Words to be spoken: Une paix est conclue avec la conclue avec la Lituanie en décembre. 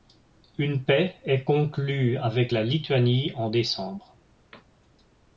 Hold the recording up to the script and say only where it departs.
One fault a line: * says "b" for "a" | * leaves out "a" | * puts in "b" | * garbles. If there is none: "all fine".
* leaves out "conclue avec la"